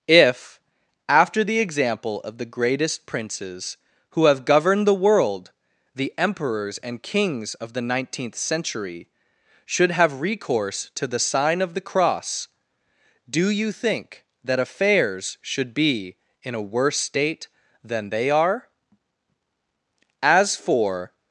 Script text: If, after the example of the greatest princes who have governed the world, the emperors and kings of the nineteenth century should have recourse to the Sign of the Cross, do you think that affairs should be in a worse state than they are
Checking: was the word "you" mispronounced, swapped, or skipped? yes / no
no